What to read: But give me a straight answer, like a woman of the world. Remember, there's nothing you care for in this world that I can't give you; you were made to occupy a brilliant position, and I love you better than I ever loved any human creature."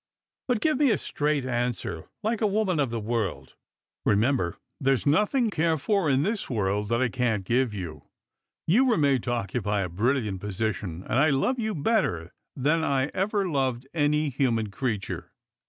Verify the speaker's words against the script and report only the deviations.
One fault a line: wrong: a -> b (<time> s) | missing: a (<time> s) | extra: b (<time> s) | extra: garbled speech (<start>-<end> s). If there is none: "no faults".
missing: you (5.5 s)